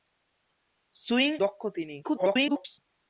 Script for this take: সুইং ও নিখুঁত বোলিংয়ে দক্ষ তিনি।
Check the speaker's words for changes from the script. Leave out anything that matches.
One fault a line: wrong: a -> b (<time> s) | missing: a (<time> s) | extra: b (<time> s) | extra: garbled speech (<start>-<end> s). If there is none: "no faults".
missing: ও নিখুঁত বোলিংয়ে (1.3 s)
extra: garbled speech (2.0-2.8 s)